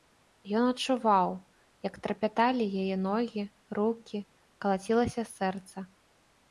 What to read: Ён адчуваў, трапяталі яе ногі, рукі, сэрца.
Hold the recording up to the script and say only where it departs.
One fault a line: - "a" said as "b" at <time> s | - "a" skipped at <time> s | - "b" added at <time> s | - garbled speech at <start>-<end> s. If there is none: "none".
- "як" added at 1.9 s
- "калацілася" added at 4.7 s